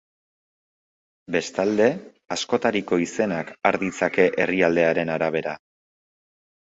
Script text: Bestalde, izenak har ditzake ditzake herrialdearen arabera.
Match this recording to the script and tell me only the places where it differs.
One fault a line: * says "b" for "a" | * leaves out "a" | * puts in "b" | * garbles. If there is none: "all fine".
* puts in "askotariko"
* leaves out "ditzake"